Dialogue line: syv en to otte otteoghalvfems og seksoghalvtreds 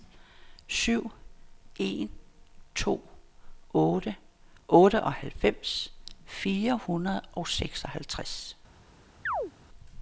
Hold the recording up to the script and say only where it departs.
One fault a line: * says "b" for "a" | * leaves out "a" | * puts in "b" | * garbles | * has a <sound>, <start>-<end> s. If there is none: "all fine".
* puts in "fire hundrede"
* has a chirp, 9.3-9.5 s